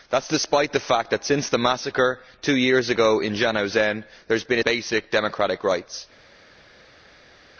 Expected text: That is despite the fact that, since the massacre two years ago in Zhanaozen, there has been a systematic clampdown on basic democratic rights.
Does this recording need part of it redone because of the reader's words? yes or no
yes